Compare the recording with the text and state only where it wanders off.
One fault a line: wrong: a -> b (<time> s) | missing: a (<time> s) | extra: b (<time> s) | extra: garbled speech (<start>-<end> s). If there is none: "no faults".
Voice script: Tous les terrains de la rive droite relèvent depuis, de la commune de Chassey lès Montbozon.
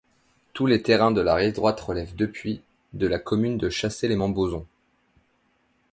no faults